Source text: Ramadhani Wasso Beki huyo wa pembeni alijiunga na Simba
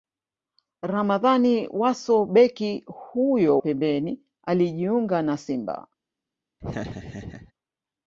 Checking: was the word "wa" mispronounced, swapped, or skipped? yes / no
yes